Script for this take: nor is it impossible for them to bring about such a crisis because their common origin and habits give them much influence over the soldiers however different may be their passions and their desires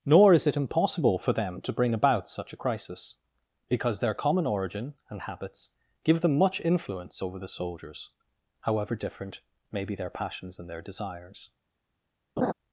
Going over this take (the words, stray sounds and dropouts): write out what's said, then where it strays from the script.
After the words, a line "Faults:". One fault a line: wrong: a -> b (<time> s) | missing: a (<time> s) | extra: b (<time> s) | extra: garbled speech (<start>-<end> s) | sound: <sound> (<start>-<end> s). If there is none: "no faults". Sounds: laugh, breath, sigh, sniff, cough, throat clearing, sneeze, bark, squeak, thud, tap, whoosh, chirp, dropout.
nor is it impossible for them to bring about such a crisis because their common origin and habits give them much influence over the soldiers however different may be their passions and their desires
Faults:
sound: laugh (12.4-12.5 s)